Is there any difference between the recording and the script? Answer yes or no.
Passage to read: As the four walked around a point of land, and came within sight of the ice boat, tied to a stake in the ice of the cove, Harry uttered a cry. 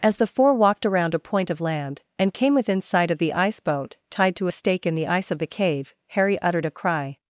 yes